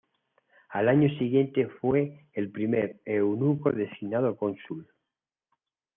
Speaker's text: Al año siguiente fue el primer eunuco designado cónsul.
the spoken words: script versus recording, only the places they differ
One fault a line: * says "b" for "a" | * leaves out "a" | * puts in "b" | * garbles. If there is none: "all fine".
all fine